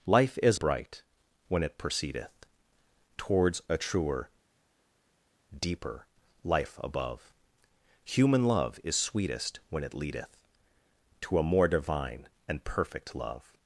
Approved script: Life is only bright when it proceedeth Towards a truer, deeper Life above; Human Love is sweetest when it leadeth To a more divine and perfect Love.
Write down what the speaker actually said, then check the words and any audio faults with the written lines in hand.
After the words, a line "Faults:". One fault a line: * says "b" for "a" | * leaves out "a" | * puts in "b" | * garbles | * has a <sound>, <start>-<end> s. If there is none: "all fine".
Life is bright when it proceedeth Towards a truer, deeper Life above; Human Love is sweetest when it leadeth To a more divine and perfect Love.
Faults:
* leaves out "only"